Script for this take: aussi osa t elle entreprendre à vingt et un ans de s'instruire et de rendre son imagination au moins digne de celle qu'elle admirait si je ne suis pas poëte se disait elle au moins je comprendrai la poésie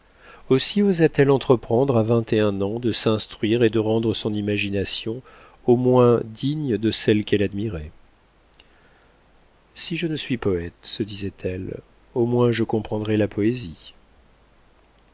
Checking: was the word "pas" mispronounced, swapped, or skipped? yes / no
yes